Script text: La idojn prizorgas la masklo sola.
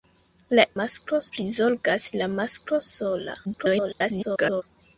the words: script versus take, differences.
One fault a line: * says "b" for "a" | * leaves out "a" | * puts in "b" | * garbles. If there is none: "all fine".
* says "masklo" for "idojn"
* garbles